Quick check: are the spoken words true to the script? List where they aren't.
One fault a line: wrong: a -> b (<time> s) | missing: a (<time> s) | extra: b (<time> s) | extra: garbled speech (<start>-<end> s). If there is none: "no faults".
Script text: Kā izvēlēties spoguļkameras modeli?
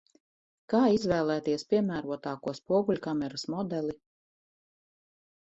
extra: piemērotāko (1.7 s)